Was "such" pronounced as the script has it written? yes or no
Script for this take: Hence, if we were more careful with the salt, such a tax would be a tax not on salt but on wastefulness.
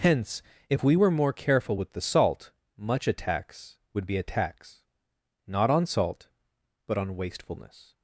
no